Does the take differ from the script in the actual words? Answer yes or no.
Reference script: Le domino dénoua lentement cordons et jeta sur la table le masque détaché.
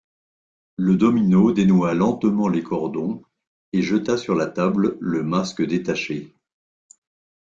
yes